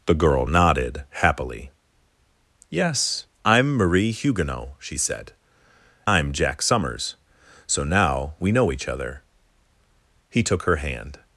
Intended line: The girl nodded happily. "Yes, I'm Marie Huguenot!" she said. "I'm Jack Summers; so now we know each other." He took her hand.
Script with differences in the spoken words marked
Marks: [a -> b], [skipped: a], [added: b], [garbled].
The girl nodded happily. "Yes, I'm Marie Huguenot!" she said. "I'm Jack Summers; so now we know each other." He took her hand.